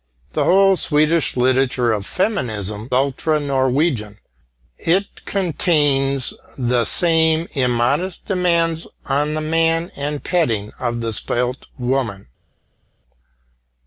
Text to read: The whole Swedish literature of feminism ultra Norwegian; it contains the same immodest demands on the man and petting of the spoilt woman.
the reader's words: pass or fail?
pass